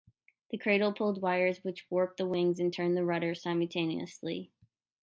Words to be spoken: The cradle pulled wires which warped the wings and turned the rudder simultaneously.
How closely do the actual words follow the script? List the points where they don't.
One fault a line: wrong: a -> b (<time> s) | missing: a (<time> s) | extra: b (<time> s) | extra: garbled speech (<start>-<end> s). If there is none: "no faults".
no faults